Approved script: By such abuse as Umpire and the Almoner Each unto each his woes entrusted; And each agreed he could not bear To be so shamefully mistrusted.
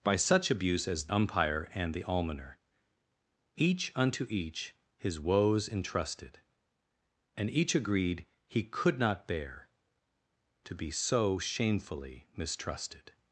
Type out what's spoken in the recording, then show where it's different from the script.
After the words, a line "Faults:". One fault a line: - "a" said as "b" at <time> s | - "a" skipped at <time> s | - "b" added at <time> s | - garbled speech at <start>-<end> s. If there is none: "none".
By such abuse as Umpire and the Almoner Each unto each his woes entrusted; And each agreed he could not bear To be so shamefully mistrusted.
Faults:
none